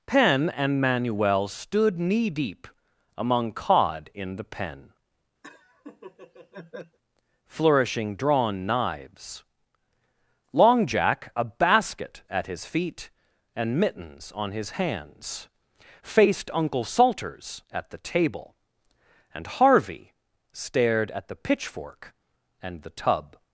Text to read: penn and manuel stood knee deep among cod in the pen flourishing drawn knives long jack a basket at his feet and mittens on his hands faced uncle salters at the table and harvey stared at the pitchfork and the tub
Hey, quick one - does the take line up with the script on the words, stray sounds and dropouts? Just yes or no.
no